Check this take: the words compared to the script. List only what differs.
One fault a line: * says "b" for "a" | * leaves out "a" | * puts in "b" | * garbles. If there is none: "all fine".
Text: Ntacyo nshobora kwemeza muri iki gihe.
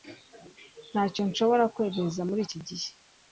all fine